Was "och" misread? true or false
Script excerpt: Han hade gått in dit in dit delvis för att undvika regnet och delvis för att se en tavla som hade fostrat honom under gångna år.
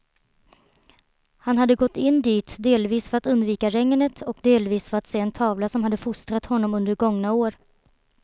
false